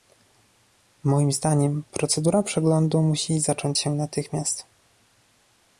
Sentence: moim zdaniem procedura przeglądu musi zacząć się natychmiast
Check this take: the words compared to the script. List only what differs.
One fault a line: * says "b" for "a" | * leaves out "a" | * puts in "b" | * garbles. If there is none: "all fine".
all fine